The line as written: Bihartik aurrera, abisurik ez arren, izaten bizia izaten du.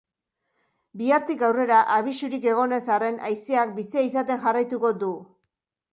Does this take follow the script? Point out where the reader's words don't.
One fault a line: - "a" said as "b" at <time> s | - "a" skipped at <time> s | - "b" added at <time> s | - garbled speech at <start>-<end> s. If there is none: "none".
- "egon" added at 2.5 s
- "izaten" said as "haizeak" at 3.3 s
- "jarraituko" added at 4.5 s